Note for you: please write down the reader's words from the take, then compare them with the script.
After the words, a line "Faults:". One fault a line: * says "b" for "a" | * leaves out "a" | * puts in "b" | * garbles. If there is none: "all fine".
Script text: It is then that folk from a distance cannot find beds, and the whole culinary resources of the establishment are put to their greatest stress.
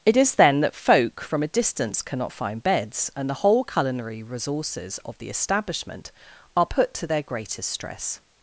It is then that folk from a distance cannot find beds, and the whole culinary resources of the establishment are put to their greatest stress.
Faults:
all fine